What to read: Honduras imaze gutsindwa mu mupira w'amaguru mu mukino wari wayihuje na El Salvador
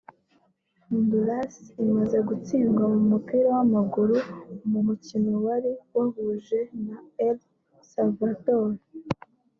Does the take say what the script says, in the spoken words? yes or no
yes